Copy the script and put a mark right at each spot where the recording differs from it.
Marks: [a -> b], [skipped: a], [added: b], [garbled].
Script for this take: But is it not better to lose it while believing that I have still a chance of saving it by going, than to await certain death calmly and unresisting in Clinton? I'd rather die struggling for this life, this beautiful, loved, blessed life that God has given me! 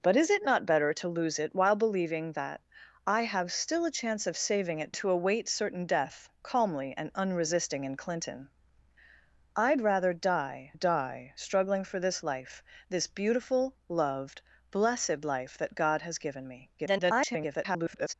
But is it not better to lose it while believing that I have still a chance of saving it [skipped: by going, than] to await certain death calmly and unresisting in Clinton? I'd rather die [added: die] struggling for this life, this beautiful, loved, blessed life that God has given me! [garbled]